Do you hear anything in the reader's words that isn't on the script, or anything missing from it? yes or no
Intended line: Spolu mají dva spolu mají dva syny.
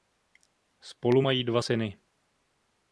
yes